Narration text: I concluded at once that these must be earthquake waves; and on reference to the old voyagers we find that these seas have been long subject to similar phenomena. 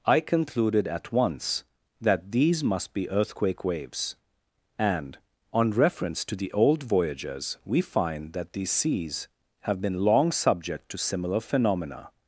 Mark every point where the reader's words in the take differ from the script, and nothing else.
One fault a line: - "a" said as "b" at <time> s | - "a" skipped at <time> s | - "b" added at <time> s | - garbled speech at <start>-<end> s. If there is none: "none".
none